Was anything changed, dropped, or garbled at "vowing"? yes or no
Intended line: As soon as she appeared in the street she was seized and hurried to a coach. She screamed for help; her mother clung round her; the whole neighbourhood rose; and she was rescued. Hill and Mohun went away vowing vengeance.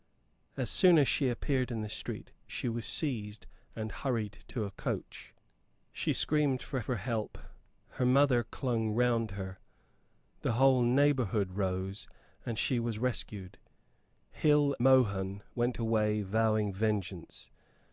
no